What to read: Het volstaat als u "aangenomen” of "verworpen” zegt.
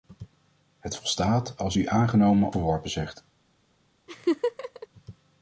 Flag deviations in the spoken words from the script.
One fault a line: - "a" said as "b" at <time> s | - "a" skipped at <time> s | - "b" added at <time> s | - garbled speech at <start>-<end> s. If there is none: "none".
- "of" skipped at 2.5 s